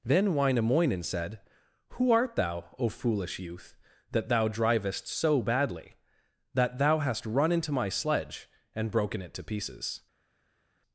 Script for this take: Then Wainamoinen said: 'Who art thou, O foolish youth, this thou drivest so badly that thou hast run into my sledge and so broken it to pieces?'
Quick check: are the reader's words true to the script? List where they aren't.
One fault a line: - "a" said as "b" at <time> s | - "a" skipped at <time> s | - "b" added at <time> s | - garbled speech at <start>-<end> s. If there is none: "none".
- "this" said as "that" at 4.1 s
- "so" skipped at 8.9 s